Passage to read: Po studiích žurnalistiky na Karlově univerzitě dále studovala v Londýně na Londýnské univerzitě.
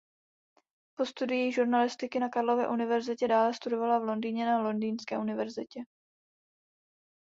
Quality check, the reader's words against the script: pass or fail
pass